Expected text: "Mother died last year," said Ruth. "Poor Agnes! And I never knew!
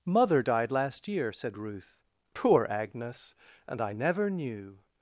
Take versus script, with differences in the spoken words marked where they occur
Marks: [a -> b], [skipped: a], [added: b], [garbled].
"Mother died last year," said Ruth. "Poor Agnes! And I never knew!